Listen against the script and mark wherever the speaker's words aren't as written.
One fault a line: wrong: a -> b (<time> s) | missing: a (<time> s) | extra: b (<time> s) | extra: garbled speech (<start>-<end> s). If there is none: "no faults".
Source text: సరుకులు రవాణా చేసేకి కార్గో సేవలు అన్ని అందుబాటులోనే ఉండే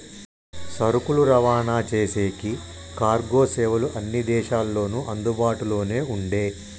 extra: దేశాల్లోనూ (4.2 s)